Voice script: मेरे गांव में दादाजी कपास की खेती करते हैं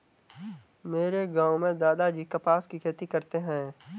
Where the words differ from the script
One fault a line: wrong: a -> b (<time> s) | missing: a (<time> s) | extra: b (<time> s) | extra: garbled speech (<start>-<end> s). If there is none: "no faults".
no faults